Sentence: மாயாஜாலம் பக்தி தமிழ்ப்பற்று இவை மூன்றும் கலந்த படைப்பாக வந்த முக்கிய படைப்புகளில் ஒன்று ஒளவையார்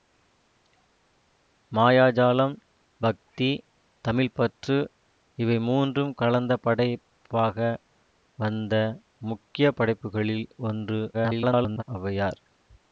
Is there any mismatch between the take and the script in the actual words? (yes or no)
yes